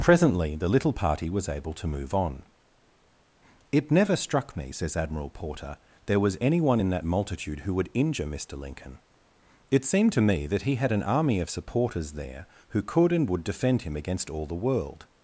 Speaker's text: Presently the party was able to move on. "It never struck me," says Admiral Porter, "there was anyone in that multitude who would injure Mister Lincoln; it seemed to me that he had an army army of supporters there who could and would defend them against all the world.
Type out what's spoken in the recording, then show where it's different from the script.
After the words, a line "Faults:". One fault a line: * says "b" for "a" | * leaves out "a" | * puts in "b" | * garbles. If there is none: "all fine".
Presently the little party was able to move on. "It never struck me," says Admiral Porter, "there was anyone in that multitude who would injure Mister Lincoln; it seemed to me that he had an army of supporters there who could and would defend him against all the world.
Faults:
* puts in "little"
* leaves out "army"
* says "him" for "them"